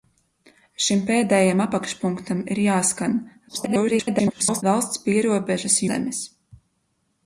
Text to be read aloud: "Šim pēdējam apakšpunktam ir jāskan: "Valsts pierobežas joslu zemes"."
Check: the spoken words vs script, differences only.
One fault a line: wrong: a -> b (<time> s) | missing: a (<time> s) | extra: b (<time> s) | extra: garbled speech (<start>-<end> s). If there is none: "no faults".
extra: garbled speech (3.5-4.6 s)
missing: joslu (5.8 s)